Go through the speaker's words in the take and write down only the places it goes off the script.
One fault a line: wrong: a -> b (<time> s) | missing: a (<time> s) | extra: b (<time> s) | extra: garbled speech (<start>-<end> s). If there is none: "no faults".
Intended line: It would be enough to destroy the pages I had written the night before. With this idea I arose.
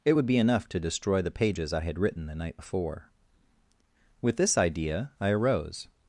no faults